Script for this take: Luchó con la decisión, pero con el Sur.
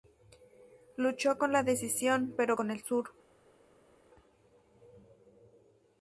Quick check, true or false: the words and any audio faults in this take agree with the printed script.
true